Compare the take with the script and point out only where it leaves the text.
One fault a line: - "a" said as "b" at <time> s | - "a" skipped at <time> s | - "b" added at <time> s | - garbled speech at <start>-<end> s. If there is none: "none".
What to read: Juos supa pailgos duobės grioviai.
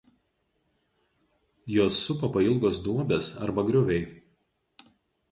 - "arba" added at 3.5 s